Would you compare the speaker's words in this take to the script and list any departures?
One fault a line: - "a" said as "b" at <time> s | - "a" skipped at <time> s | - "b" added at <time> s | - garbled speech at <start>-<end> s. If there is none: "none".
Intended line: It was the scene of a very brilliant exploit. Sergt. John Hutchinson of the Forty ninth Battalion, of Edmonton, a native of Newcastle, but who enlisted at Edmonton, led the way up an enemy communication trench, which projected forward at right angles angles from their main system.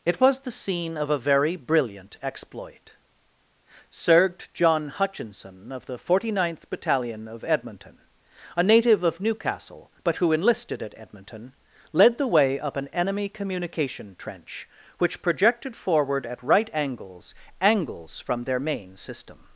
none